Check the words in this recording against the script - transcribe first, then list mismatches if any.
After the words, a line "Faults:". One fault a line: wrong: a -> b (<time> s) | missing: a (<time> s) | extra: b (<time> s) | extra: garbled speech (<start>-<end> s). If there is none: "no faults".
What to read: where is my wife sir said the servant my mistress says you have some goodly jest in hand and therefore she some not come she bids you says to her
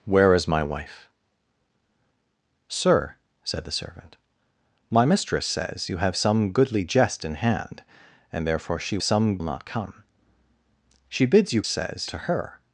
where is my wife sir said the servant my mistress says you have some goodly jest in hand and therefore she some not come she bids you says to her
Faults:
no faults